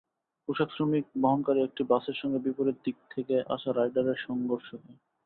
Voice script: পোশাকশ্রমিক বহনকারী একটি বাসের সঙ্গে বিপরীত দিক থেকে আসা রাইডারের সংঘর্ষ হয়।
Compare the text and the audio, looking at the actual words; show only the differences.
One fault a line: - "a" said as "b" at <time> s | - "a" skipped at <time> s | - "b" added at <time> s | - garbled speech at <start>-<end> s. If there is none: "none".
none